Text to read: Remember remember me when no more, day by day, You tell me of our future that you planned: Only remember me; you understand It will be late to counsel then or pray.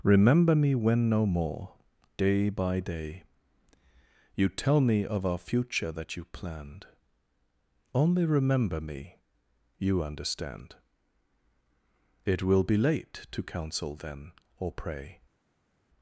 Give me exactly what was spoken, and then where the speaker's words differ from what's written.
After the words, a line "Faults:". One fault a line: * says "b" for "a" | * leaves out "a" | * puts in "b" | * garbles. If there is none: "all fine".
Remember me when no more, day by day, You tell me of our future that you planned: Only remember me; you understand It will be late to counsel then or pray.
Faults:
* leaves out "remember"